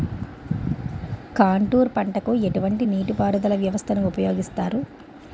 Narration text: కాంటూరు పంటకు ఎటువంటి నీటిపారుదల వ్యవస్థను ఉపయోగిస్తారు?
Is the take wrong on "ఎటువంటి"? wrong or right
right